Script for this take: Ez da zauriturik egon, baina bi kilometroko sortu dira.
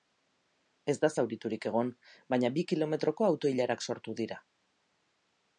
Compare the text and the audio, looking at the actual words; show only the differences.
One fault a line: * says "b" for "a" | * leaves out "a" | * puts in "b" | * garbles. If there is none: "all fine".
* puts in "auto ilarak"